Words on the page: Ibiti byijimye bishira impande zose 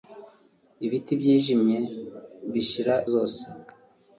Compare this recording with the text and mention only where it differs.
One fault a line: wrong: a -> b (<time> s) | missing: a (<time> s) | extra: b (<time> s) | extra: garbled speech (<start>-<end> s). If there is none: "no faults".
missing: impande (2.9 s)